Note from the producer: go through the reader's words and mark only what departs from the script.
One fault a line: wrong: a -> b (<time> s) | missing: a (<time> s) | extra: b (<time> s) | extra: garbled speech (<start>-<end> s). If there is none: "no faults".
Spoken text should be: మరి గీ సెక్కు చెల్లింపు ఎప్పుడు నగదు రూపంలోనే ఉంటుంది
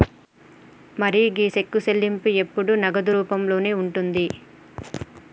no faults